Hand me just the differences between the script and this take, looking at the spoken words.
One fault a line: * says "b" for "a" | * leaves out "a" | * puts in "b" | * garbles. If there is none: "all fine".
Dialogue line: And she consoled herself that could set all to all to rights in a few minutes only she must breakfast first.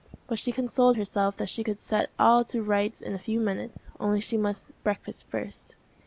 * says "But" for "And"
* puts in "she"
* leaves out "all to"